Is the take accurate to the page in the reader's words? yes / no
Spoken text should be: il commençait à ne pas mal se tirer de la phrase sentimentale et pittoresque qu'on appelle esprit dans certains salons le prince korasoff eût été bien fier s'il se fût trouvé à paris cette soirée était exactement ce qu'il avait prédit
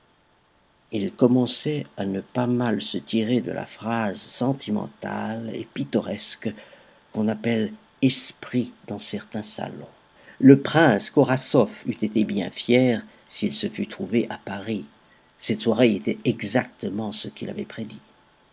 yes